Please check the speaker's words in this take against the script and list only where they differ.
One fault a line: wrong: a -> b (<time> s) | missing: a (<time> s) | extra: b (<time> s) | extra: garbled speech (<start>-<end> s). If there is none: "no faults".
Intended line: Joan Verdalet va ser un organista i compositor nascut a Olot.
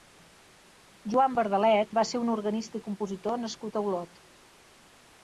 no faults